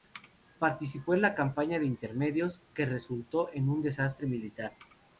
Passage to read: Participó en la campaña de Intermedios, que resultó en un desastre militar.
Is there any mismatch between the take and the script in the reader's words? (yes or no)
no